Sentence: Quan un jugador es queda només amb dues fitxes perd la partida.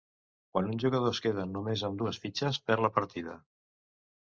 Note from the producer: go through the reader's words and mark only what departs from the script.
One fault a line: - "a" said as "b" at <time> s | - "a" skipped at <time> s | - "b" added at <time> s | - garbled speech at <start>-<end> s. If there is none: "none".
none